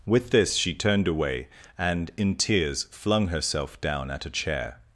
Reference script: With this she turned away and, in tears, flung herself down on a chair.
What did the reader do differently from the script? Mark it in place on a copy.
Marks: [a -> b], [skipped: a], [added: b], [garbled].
With this she turned away and, in tears, flung herself down [on -> at] a chair.